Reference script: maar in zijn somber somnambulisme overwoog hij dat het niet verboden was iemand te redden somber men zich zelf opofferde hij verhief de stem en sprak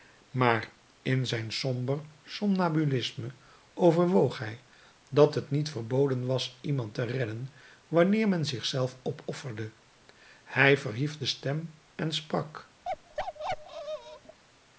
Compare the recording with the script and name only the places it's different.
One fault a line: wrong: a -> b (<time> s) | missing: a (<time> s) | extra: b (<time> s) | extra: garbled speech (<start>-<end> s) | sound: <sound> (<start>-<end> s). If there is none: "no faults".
wrong: somber -> wanneer (7.9 s)
sound: bark (12.8-14.4 s)